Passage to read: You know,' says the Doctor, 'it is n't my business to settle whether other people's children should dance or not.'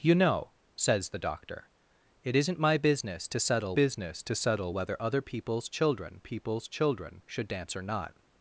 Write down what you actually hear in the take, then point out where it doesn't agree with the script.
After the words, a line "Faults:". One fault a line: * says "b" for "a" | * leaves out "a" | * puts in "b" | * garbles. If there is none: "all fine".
You know,' says the Doctor, 'it is n't my business to settle business to settle whether other people's children people's children should dance or not.'
Faults:
* puts in "business to settle"
* puts in "people's children"